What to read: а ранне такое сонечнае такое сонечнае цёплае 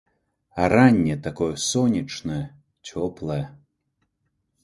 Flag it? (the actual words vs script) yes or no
yes